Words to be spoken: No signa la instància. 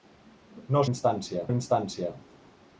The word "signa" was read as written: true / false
false